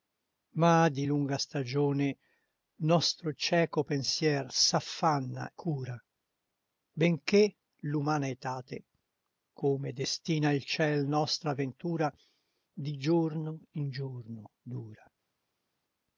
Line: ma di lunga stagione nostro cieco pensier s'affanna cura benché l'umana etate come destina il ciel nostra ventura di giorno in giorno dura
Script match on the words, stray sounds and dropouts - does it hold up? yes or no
yes